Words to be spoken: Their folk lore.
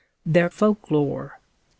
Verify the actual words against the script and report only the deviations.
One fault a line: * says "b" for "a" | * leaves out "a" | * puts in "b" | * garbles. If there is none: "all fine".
all fine